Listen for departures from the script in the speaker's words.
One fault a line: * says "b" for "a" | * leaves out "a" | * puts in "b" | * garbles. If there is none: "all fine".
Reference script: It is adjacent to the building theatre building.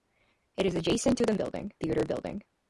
all fine